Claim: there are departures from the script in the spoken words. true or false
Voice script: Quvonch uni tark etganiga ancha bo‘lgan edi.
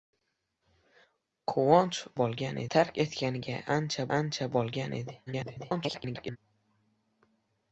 true